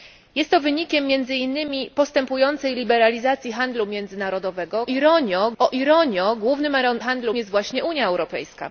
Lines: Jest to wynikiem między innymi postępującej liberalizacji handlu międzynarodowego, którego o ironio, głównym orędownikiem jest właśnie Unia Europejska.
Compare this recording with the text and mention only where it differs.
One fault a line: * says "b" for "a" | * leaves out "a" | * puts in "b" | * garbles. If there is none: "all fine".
* says "ironio" for "którego"
* says "handlu" for "orędownikiem"